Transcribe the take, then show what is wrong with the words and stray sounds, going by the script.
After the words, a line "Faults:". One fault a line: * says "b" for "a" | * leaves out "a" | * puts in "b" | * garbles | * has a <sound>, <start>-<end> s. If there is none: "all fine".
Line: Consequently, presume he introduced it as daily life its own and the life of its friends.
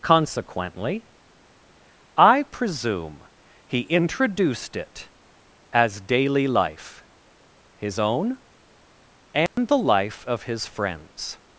Consequently, I presume he introduced it as daily life his own and the life of his friends.
Faults:
* puts in "I"
* says "his" for "its"
* has a dropout, 9.5-9.6 s
* says "his" for "its"